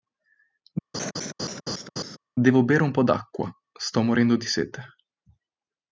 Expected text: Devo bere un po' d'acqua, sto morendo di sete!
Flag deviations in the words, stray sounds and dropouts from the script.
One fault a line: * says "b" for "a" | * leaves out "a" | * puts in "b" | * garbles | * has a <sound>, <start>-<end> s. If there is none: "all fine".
* has a laugh, 0.9-2.2 s